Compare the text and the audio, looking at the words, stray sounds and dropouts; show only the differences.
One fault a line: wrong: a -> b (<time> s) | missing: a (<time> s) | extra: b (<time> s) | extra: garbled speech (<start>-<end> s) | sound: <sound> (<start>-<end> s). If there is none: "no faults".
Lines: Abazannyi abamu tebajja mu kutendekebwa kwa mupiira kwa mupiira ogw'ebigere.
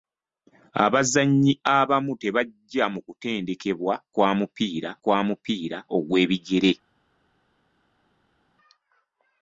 no faults